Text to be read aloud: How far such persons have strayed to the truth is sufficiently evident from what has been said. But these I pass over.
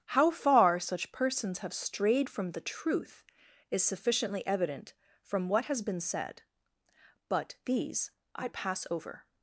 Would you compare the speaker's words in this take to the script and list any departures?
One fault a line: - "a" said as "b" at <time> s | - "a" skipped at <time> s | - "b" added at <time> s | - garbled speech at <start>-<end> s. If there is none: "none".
- "to" said as "from" at 2.3 s